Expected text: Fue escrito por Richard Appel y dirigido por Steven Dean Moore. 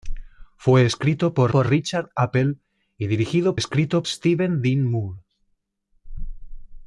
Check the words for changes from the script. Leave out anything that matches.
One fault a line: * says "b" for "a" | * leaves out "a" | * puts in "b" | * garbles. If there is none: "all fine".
* puts in "por"
* says "escrito" for "por"